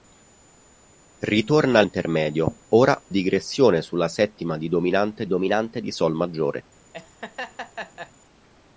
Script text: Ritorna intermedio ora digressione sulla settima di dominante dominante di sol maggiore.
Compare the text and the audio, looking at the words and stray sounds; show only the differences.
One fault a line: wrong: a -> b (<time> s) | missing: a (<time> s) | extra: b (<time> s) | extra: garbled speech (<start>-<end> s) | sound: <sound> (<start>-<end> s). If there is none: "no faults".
sound: laugh (6.9-8.1 s)